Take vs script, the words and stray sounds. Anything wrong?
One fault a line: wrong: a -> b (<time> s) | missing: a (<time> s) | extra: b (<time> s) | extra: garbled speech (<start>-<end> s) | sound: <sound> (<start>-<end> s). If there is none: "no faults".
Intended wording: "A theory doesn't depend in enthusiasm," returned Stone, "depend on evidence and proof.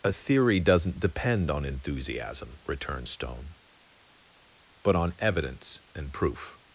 wrong: in -> on (1.5 s)
wrong: depend -> but (4.8 s)